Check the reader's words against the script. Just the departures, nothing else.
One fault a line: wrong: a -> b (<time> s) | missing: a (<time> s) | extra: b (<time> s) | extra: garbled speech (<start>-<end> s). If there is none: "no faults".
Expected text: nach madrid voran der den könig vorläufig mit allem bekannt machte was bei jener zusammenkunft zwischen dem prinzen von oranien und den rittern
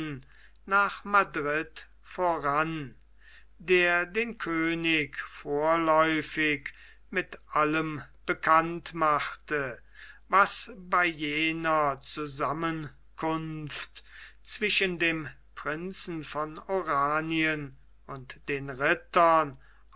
no faults